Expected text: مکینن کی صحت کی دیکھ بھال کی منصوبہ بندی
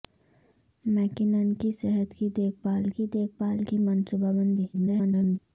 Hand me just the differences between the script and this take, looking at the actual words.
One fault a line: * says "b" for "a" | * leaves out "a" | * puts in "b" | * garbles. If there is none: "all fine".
* puts in "دیکھ بھال کی"
* garbles